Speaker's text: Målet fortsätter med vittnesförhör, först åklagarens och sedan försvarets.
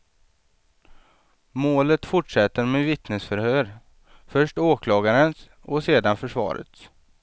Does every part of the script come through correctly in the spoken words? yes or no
yes